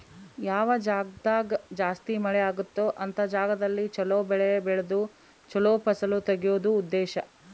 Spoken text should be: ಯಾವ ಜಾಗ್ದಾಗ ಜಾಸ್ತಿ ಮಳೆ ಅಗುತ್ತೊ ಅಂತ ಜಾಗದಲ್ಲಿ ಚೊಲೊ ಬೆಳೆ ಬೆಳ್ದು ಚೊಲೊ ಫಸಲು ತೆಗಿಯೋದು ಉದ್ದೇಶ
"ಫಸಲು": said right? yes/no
yes